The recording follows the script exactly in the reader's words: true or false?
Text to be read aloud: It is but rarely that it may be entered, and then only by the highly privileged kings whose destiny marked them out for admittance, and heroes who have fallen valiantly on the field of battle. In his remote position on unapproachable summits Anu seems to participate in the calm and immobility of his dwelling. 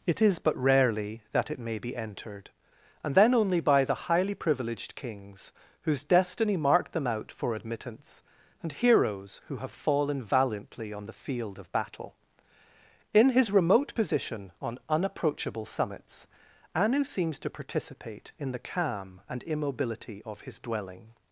true